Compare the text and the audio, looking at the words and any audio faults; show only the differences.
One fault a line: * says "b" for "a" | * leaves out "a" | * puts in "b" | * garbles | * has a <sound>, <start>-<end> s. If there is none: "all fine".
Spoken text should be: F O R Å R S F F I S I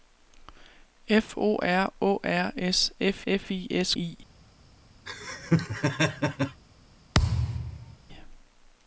* has a laugh, 5.1-6.6 s
* has a thud, 7.1-8.0 s